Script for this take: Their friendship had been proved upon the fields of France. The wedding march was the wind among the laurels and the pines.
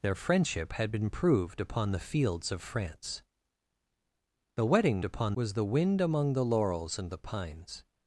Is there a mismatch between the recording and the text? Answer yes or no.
yes